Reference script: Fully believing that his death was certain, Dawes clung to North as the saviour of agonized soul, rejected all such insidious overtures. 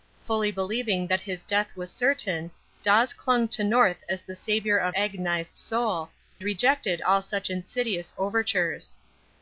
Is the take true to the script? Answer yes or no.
yes